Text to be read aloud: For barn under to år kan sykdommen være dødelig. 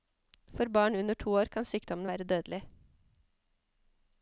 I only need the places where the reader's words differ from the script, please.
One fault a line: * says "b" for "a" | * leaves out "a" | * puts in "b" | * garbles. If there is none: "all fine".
all fine